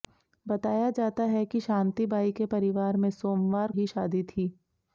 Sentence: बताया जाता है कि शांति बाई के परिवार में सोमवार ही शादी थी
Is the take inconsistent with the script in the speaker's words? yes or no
no